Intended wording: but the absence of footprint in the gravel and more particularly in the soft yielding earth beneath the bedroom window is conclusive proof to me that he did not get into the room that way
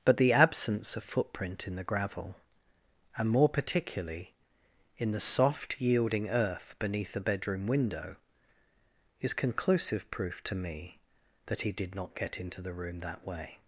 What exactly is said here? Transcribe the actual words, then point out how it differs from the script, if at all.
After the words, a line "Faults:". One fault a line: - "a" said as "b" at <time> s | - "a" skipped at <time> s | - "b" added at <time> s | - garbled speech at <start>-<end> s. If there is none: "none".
but the absence of footprint in the gravel and more particularly in the soft yielding earth beneath the bedroom window is conclusive proof to me that he did not get into the room that way
Faults:
none